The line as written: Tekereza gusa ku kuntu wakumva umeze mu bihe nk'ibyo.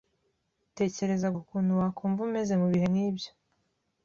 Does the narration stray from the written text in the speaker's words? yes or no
yes